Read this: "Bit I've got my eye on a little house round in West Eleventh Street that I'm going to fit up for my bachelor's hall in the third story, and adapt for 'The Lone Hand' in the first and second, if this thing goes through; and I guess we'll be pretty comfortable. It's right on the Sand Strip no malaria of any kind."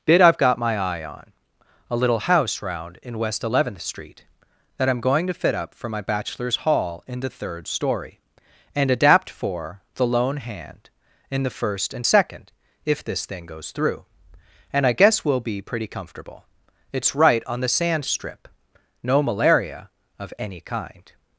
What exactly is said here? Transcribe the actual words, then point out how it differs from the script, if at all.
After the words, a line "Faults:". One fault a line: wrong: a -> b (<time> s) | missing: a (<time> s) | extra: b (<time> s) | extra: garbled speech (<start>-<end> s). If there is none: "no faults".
"Bit I've got my eye on a little house round in West Eleventh Street that I'm going to fit up for my bachelor's hall in the third story, and adapt for 'The Lone Hand' in the first and second, if this thing goes through; and I guess we'll be pretty comfortable. It's right on the Sand Strip no malaria of any kind."
Faults:
no faults